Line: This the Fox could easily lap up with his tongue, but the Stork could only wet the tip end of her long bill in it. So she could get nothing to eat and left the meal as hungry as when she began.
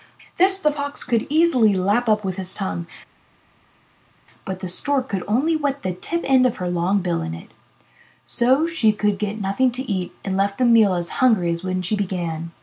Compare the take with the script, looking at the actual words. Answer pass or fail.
pass